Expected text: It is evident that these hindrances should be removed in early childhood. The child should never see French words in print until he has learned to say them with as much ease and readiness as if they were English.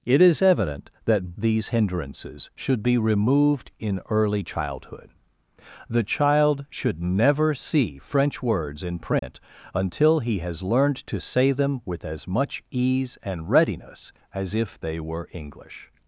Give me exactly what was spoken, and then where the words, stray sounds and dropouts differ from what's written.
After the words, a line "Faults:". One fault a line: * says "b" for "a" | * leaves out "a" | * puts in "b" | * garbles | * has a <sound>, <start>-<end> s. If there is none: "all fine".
It is evident that these hindrances should be removed in early childhood. The child should never see French words in print until he has learned to say them with as much ease and readiness as if they were English.
Faults:
* has a dropout, 9.2-9.2 s